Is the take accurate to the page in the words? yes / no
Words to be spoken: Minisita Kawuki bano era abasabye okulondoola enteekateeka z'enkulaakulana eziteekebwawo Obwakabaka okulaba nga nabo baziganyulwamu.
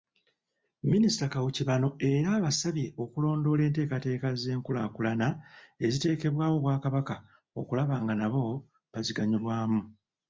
yes